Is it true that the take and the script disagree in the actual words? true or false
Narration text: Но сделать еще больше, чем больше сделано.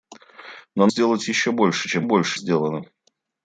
false